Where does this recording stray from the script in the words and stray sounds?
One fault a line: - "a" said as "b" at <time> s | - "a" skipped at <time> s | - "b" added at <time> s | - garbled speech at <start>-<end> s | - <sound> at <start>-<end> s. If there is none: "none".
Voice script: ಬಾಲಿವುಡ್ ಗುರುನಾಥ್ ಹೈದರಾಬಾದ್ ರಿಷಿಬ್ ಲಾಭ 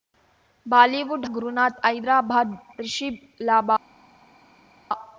none